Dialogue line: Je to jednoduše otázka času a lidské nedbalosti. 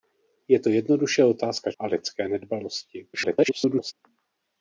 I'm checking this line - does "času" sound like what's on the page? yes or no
no